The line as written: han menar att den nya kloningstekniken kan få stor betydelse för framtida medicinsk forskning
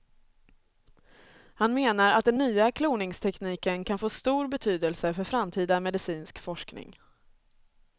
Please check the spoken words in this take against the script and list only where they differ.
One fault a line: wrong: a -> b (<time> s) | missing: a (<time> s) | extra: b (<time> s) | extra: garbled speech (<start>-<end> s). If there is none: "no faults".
no faults